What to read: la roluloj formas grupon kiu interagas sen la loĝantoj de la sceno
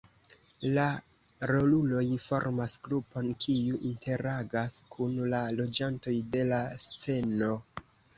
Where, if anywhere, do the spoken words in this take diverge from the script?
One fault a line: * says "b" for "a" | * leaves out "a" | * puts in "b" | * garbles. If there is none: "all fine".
* says "kun" for "sen"